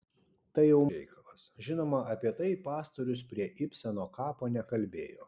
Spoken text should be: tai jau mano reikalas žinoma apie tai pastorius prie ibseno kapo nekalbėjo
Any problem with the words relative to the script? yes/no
yes